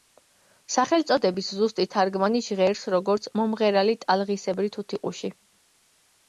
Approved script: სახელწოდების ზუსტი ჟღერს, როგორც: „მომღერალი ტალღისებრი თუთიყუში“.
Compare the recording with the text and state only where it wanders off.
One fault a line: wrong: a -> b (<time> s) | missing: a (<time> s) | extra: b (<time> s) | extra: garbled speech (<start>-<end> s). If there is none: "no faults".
extra: თარგმანი (2.0 s)